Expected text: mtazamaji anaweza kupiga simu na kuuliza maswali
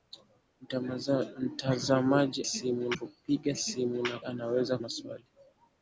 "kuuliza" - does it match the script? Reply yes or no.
no